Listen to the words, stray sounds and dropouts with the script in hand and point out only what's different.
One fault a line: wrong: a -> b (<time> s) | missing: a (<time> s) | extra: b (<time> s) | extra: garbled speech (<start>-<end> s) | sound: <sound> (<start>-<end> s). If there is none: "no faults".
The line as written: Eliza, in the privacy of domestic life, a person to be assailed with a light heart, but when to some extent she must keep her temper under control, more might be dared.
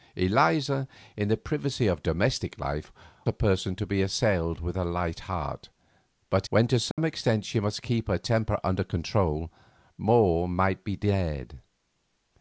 sound: dropout (6.9-7.0 s)